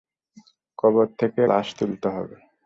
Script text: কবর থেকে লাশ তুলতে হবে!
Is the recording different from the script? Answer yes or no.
no